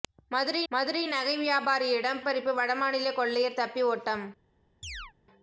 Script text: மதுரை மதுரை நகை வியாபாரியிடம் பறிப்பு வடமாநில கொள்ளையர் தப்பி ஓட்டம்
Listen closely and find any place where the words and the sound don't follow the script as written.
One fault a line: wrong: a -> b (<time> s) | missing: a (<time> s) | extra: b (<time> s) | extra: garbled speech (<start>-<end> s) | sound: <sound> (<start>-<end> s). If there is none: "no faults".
sound: chirp (4.8-5.1 s)